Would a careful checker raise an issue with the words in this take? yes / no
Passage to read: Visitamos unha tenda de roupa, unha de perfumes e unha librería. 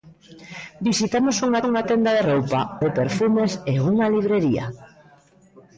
yes